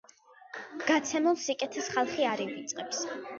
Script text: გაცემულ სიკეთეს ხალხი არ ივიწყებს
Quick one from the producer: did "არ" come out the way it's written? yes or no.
yes